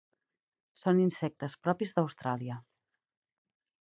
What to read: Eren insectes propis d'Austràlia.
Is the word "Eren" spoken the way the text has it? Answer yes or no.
no